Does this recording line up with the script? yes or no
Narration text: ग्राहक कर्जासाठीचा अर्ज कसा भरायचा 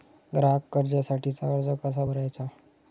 yes